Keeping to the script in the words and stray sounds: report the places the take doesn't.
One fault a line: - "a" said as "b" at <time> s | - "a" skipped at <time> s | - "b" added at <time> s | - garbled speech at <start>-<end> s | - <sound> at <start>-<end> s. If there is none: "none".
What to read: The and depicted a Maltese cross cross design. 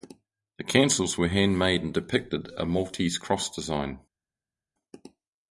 - "cancels were handmade" added at 0.6 s
- "cross" skipped at 3.5 s